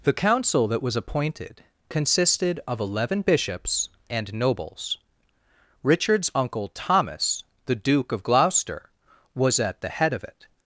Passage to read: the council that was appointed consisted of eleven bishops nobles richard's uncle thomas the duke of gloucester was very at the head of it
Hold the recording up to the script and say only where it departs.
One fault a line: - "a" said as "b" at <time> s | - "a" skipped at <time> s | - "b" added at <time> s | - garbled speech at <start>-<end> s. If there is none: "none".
- "and" added at 4.1 s
- "very" skipped at 9.6 s